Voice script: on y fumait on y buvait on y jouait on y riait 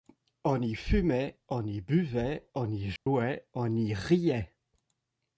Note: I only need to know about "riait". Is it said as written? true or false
true